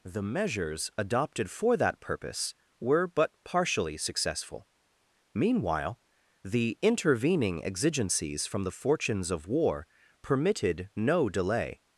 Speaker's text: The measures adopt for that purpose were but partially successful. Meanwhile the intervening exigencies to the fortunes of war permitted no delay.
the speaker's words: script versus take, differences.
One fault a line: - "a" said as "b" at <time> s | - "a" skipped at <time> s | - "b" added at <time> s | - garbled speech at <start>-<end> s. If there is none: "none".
- "adopt" said as "adopted" at 1.0 s
- "to" said as "from" at 8.5 s